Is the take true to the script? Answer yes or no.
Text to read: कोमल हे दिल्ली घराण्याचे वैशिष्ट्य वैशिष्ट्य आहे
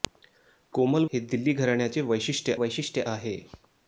yes